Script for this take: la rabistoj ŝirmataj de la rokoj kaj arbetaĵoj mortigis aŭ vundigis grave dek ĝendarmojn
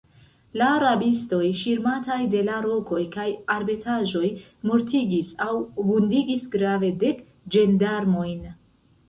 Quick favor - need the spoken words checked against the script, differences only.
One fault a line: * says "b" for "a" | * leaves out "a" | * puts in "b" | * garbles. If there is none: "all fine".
all fine